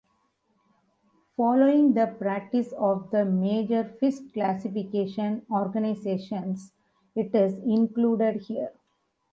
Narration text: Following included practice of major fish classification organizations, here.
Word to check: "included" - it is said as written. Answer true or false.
false